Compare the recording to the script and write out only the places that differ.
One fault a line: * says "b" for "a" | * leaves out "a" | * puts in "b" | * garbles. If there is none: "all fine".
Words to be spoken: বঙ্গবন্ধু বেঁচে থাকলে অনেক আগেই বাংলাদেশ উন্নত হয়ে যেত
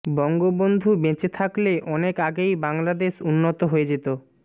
all fine